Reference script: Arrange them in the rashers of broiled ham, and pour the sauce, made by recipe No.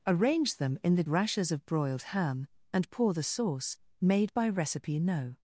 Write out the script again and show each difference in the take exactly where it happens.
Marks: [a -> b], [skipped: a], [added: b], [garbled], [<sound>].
Arrange them in the rashers of broiled ham, and pour the sauce, made by recipe No.